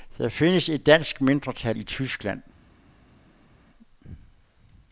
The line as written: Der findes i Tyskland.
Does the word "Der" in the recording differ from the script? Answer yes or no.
no